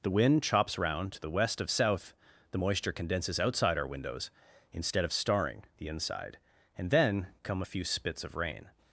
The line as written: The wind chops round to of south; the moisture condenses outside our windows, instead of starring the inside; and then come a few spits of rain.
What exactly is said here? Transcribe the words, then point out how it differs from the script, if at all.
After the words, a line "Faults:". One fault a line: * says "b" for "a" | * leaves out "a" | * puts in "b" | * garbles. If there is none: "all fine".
The wind chops round to the west of south; the moisture condenses outside our windows, instead of starring the inside; and then come a few spits of rain.
Faults:
* puts in "the west"